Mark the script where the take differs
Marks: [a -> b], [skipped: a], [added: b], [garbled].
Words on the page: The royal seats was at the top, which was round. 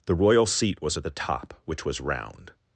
The royal [seats -> seat] was at the top, which was round.